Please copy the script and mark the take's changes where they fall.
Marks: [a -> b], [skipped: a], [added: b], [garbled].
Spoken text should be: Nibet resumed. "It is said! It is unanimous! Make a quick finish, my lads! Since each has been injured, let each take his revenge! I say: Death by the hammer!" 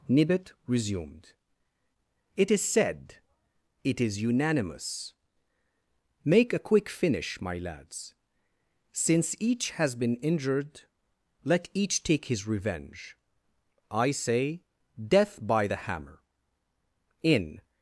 Nibet resumed. "It is said! It is unanimous! Make a quick finish, my lads! Since each has been injured, let each take his revenge! I say: Death by the hammer!" [added: In]